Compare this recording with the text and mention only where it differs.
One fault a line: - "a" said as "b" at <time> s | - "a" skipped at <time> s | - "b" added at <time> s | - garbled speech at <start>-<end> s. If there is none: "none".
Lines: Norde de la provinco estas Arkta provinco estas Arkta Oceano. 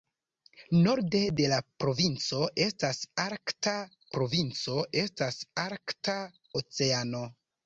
none